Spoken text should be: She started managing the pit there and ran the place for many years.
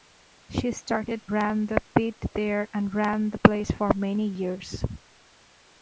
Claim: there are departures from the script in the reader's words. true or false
true